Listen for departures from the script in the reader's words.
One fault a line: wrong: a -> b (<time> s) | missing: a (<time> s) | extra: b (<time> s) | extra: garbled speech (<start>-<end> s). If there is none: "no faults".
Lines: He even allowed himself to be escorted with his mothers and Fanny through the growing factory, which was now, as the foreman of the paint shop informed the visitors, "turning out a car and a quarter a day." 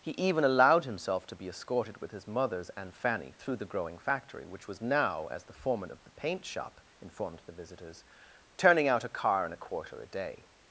no faults